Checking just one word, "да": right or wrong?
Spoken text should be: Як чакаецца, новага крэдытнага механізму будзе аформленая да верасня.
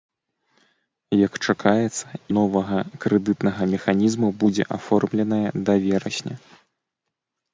right